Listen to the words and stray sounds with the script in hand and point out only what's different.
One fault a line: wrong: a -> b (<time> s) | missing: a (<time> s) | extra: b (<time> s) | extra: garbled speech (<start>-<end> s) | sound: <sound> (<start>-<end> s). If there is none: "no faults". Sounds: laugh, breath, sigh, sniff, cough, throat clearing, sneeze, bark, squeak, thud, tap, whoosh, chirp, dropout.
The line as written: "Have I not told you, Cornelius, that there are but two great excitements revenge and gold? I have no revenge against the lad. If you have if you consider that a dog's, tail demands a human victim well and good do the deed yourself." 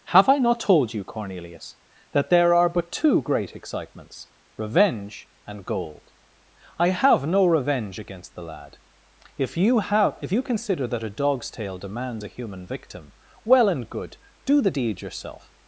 no faults